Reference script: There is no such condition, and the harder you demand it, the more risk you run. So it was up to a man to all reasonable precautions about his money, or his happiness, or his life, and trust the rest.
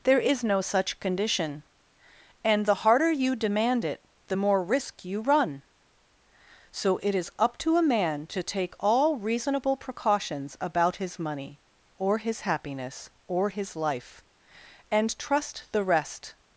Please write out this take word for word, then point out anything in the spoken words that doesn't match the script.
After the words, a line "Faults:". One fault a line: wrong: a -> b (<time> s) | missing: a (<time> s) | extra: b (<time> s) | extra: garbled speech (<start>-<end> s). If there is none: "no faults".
There is no such condition, and the harder you demand it, the more risk you run. So it is up to a man to take all reasonable precautions about his money, or his happiness, or his life, and trust the rest.
Faults:
wrong: was -> is (7.2 s)
extra: take (8.4 s)